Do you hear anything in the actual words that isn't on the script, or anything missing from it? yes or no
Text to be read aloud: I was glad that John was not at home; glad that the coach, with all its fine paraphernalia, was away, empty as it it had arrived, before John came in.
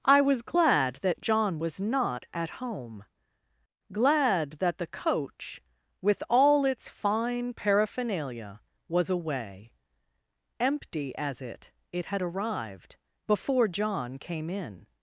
no